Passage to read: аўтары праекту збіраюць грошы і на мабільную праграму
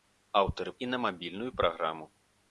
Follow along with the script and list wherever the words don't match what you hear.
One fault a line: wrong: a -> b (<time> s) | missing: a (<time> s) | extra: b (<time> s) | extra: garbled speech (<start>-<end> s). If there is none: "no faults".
missing: праекту збіраюць грошы (0.7 s)